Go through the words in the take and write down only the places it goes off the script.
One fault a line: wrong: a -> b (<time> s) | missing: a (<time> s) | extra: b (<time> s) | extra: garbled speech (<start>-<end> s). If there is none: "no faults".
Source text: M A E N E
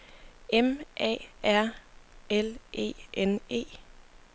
extra: R L (1.4 s)